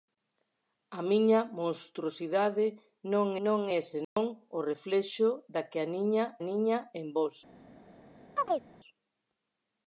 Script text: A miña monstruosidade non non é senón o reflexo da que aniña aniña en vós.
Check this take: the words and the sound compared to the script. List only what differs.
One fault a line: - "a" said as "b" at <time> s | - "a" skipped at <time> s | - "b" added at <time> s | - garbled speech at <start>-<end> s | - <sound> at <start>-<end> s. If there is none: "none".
- dropout at 4.0-4.2 s
- chirp at 8.4-8.6 s